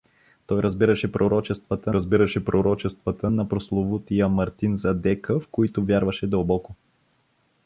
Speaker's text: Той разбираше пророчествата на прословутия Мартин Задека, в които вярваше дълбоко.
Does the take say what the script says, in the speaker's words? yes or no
no